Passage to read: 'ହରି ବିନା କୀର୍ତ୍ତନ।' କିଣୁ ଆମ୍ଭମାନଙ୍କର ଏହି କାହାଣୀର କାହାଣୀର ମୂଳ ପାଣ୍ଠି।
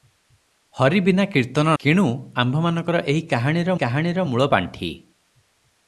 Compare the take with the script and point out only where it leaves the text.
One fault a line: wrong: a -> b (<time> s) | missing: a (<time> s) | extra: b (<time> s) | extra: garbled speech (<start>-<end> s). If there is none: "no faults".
no faults